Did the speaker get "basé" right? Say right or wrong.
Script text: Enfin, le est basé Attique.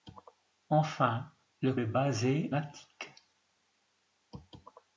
right